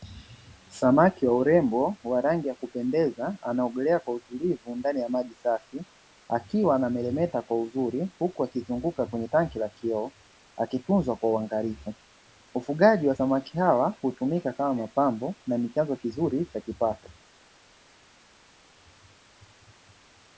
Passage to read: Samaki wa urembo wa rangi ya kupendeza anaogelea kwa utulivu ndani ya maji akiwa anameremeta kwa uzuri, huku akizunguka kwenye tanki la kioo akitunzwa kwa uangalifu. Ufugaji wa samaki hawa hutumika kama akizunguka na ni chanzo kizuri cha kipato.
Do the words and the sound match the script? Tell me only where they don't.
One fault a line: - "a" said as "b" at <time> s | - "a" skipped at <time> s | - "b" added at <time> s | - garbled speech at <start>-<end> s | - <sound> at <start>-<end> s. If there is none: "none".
- "safi" added at 5.3 s
- "akizunguka" said as "mapambo" at 14.7 s